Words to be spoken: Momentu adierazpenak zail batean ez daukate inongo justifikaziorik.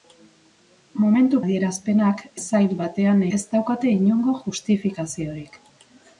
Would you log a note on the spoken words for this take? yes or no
no